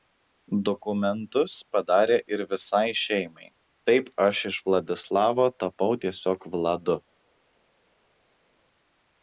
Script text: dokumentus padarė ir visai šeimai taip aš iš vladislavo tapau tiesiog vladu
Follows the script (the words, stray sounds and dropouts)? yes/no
yes